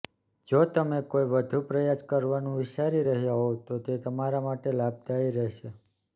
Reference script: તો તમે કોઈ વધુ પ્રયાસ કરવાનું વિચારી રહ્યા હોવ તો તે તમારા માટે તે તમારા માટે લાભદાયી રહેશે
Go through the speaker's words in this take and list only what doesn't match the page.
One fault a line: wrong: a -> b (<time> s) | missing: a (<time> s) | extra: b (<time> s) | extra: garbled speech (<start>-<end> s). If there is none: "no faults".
wrong: તો -> જો (0.5 s)
missing: તે તમારા માટે (4.8 s)